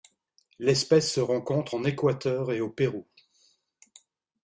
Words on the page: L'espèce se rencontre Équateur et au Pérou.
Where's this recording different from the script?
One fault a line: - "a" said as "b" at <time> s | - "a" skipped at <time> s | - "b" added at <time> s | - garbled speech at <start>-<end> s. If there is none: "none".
- "en" added at 1.7 s